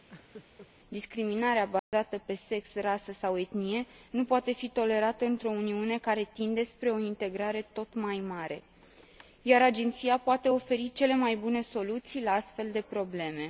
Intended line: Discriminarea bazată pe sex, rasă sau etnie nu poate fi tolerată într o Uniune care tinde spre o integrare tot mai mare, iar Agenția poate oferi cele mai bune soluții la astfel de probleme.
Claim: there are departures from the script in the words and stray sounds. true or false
true